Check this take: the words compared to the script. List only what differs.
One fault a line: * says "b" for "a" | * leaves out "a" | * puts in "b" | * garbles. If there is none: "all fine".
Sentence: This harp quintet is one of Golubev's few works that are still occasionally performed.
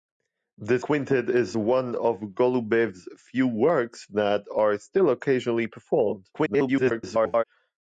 * leaves out "harp"
* garbles